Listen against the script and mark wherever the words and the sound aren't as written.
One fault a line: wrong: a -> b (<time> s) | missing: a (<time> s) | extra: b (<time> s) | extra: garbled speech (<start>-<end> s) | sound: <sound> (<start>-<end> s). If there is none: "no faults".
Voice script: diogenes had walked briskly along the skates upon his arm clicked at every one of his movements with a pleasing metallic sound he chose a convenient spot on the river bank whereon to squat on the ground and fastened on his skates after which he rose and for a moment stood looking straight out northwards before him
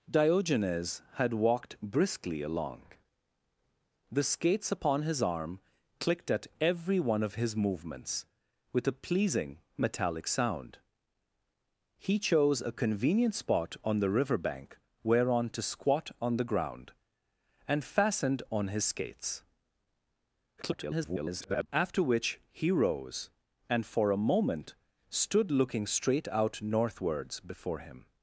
extra: garbled speech (20.6-21.7 s)